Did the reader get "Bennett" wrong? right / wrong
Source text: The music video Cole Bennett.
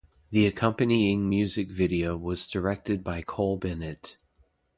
right